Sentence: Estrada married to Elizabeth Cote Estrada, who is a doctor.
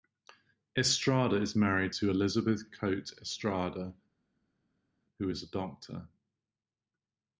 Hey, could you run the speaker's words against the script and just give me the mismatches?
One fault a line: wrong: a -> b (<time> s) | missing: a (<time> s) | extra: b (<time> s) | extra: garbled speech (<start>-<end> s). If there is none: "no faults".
extra: is (1.4 s)